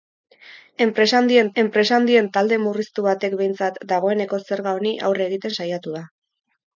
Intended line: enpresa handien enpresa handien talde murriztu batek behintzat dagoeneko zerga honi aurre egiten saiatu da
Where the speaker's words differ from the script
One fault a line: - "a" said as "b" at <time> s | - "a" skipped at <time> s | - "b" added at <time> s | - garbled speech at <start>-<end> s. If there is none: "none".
none